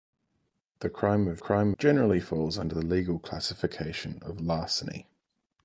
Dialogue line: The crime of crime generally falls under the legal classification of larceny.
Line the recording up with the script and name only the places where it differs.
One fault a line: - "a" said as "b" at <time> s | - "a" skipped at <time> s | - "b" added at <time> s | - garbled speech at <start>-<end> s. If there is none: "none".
none